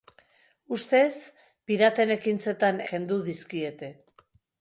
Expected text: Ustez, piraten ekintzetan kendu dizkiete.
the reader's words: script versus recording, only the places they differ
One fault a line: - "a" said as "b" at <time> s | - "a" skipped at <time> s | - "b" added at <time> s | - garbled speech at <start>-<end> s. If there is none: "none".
none